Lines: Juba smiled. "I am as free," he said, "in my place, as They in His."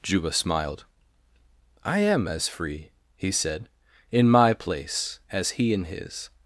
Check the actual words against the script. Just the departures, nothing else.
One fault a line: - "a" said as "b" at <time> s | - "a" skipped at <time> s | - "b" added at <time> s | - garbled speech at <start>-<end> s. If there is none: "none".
- "They" said as "He" at 5.6 s